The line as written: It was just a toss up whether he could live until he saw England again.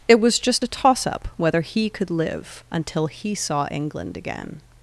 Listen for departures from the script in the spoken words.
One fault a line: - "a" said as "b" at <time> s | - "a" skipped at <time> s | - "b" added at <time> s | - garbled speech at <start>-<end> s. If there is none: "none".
none